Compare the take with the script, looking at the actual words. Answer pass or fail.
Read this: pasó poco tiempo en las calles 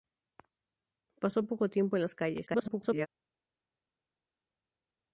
fail